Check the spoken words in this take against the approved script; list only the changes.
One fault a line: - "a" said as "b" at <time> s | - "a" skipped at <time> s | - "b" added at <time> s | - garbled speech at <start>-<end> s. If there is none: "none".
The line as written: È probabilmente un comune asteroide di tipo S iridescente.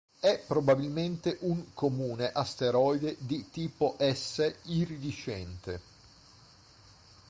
none